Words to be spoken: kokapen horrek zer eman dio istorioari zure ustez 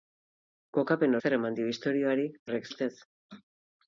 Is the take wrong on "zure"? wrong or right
wrong